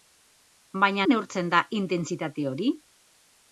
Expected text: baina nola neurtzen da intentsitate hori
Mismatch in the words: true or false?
true